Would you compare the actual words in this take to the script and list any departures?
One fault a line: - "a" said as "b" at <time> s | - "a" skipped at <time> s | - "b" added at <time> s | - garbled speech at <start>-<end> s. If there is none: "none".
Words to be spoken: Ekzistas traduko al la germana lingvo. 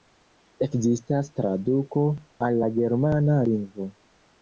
none